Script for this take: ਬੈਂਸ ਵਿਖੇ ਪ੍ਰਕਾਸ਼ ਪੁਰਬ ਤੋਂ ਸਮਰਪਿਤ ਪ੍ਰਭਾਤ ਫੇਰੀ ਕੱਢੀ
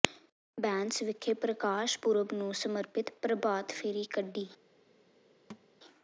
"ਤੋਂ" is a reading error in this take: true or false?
true